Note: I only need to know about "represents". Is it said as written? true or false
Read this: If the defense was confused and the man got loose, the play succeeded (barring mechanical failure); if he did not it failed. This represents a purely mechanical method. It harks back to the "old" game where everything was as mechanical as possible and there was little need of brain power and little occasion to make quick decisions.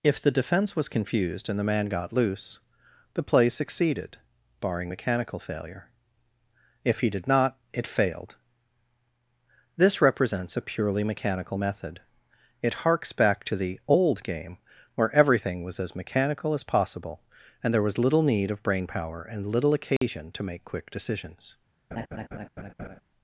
true